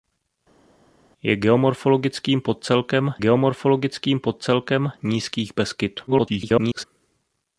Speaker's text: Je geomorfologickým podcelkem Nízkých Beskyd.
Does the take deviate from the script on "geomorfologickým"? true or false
false